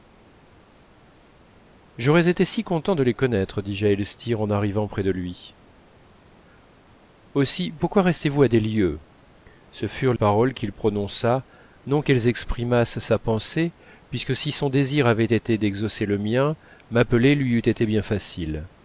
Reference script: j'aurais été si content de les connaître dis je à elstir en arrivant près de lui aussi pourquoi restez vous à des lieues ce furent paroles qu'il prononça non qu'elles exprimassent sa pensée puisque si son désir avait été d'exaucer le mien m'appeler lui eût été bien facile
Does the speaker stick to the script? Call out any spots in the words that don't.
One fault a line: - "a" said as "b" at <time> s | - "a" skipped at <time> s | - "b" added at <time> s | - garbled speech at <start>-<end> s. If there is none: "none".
none